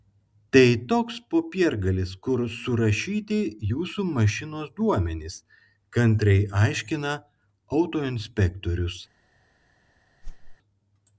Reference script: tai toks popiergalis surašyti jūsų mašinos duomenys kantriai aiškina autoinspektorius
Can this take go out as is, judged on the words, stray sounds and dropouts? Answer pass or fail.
fail